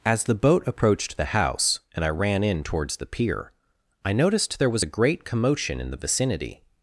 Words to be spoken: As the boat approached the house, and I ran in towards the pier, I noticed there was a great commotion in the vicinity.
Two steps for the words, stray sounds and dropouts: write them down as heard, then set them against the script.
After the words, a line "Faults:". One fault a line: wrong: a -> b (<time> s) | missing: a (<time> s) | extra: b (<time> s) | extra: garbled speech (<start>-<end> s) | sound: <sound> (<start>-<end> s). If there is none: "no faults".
As the boat approached the house, and I ran in towards the pier, I noticed there was a great commotion in the vicinity.
Faults:
no faults